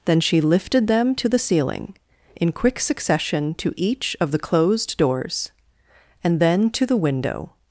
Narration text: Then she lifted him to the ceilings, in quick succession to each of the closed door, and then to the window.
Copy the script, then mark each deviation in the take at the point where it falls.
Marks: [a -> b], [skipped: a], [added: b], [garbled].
Then she lifted [him -> them] to the [ceilings, -> ceiling] in quick succession to each of the closed [door, -> doors] and then to the window.